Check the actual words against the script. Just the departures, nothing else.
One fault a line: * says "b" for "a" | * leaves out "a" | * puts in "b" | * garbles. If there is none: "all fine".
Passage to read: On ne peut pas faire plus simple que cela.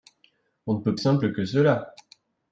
* leaves out "pas faire plus"